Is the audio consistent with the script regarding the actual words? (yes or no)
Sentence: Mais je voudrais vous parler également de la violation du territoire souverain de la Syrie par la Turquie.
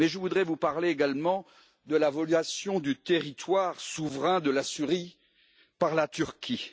yes